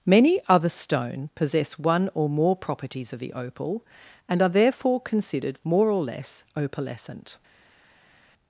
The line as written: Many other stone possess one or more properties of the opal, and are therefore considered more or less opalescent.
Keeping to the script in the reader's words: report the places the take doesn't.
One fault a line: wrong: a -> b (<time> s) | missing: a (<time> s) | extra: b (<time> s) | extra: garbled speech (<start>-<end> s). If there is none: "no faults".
no faults